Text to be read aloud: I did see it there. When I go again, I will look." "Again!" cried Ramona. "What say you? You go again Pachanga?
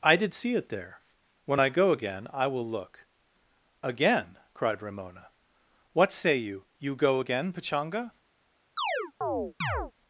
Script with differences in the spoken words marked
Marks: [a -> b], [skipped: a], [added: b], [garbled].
I did see it there. When I go again, I will look." "Again!" cried Ramona. "What say you? You go again Pachanga?